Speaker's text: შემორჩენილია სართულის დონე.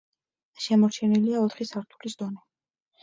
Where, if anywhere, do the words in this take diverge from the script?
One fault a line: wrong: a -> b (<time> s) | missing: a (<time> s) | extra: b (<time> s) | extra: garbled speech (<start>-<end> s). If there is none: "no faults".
extra: ოთხი (1.5 s)